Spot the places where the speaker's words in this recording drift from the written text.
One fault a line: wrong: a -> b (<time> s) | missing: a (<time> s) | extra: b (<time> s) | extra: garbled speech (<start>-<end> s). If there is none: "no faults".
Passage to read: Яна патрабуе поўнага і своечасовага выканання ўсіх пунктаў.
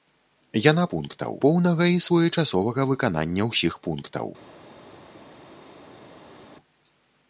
wrong: патрабуе -> пунктаў (1.0 s)